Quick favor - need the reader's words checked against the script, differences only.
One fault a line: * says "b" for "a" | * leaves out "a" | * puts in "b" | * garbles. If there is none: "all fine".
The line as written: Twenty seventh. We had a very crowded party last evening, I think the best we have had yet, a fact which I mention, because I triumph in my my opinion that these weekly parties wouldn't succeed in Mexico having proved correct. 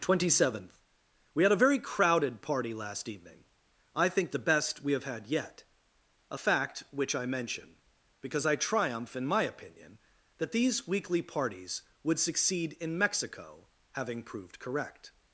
* leaves out "my"
* says "would" for "wouldn't"